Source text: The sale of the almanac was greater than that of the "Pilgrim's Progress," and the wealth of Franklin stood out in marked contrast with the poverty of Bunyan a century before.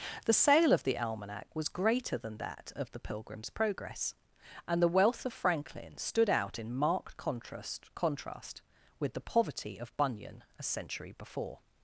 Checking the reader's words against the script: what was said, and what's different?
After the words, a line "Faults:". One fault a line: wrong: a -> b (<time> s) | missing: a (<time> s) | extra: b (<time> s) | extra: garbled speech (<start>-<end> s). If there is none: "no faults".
The sale of the almanac was greater than that of the "Pilgrim's Progress," and the wealth of Franklin stood out in marked contrast contrast with the poverty of Bunyan a century before.
Faults:
extra: contrast (8.0 s)